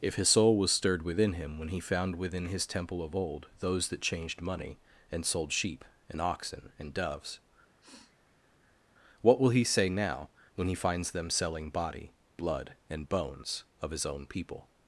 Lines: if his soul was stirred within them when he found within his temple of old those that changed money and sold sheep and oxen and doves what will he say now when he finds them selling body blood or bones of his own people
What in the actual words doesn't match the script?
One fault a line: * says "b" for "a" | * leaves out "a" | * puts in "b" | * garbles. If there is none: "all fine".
* says "him" for "them"
* says "and" for "or"